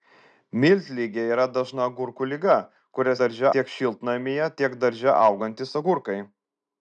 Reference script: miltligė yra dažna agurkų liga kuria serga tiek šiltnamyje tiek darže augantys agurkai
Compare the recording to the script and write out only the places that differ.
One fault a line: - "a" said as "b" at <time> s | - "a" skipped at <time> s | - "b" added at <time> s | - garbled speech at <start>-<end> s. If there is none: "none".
- "serga" said as "darže" at 3.2 s